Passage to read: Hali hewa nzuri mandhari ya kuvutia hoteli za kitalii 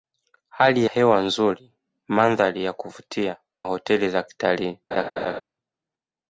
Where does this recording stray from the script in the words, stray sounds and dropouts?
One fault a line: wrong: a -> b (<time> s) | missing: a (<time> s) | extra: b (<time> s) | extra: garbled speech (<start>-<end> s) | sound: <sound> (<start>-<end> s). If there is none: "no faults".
sound: laugh (4.9-5.4 s)